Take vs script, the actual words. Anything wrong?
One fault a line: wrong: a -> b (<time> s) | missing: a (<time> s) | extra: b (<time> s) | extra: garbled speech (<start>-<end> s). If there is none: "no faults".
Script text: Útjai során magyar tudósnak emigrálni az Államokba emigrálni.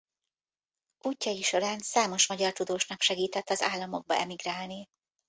extra: számos (1.8 s)
wrong: emigrálni -> segített (3.0 s)